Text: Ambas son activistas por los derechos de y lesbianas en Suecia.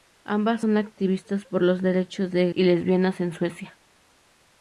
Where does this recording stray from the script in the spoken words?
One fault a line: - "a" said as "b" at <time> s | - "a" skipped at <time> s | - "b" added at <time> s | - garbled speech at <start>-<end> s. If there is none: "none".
none